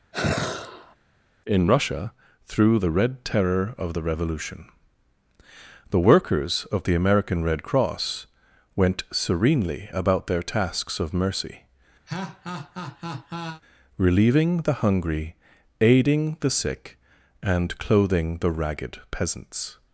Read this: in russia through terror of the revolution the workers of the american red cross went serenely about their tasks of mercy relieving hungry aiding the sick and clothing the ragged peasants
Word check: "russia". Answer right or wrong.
right